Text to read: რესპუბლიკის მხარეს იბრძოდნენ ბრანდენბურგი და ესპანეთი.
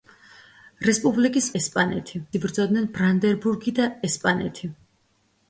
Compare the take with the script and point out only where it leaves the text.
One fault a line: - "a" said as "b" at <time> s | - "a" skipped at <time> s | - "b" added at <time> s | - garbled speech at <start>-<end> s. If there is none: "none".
- "მხარეს" said as "ესპანეთი" at 1.6 s